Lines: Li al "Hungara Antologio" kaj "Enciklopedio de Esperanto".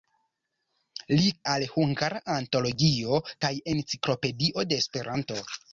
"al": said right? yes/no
yes